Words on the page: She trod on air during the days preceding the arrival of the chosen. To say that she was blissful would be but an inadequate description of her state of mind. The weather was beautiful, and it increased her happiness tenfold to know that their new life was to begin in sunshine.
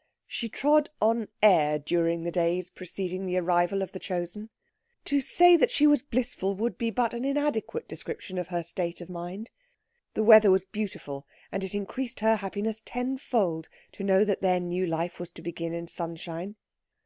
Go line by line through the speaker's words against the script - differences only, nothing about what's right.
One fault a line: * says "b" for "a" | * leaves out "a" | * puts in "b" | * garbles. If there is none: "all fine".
all fine